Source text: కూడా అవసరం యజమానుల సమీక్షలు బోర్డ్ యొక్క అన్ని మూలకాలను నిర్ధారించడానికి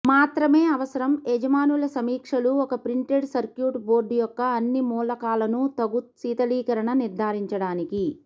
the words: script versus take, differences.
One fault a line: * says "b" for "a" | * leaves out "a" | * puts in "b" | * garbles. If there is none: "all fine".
* says "మాత్రమే" for "కూడా"
* puts in "ఒక ప్రింటెడ్ సర్క్యూట్"
* puts in "తగు శీతలీకరణ"